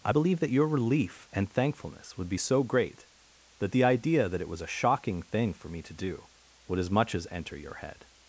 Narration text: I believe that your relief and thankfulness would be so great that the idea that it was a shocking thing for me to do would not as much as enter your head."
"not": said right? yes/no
no